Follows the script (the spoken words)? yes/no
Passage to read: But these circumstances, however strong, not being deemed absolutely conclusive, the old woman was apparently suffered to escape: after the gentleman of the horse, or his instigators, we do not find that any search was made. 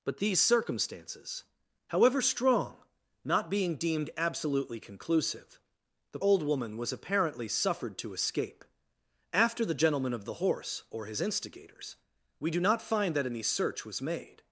yes